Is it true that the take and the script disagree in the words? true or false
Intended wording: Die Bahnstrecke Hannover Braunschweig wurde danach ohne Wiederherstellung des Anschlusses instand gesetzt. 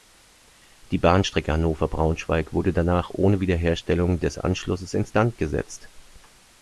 false